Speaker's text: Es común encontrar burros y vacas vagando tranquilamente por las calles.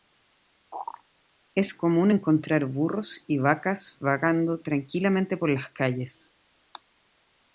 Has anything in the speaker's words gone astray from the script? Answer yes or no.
no